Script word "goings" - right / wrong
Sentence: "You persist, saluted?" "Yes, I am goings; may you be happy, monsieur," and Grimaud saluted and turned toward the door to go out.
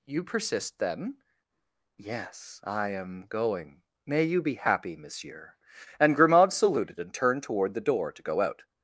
wrong